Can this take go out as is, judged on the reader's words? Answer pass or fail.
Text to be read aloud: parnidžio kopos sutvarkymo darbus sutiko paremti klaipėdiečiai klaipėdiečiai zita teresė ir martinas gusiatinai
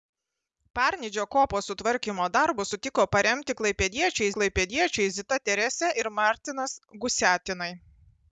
pass